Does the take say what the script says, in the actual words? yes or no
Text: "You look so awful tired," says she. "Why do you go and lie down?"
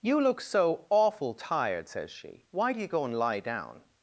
yes